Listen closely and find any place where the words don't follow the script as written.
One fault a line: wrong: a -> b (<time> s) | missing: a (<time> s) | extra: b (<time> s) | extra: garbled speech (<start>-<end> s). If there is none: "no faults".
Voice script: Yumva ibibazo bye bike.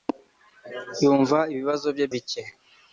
no faults